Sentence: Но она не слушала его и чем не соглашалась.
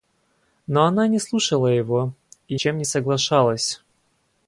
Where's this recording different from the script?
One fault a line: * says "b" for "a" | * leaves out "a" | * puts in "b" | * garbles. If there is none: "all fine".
all fine